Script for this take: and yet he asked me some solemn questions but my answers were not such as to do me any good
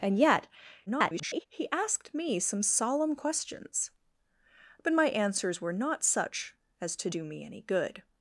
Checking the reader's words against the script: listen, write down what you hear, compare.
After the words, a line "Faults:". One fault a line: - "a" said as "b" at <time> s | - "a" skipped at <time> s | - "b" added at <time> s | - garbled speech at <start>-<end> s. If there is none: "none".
and yet [garbled] he asked me some solemn questions but my answers were not such as to do me any good
Faults:
- garbled speech at 0.9-1.5 s